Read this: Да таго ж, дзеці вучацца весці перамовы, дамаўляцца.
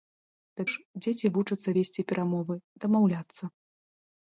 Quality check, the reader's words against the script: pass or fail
fail